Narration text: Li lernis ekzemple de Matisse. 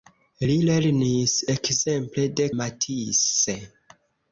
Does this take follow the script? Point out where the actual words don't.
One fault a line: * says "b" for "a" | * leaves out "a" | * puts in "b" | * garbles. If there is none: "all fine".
all fine